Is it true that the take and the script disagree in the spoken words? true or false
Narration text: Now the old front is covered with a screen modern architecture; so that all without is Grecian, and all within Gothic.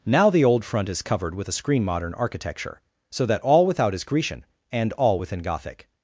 false